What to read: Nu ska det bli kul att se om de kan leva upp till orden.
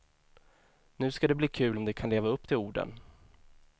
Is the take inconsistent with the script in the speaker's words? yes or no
yes